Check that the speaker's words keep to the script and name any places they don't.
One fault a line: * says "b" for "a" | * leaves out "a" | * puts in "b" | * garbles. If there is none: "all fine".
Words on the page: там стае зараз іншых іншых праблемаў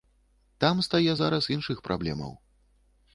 * leaves out "іншых"